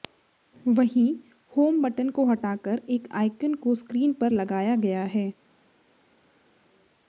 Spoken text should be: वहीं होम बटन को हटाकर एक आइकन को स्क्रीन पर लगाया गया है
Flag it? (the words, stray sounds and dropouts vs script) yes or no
no